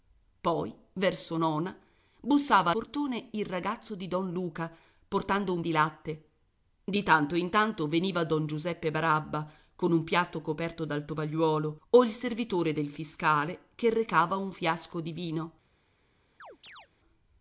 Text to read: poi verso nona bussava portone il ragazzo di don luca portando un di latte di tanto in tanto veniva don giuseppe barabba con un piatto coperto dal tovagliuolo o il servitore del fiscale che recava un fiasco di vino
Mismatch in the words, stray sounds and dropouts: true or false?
true